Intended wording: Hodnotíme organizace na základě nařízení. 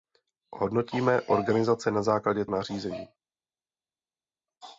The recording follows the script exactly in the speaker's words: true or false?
true